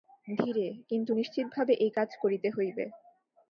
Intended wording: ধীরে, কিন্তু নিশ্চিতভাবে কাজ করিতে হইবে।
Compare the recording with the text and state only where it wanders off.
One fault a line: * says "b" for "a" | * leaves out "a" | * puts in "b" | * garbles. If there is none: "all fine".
* puts in "এই"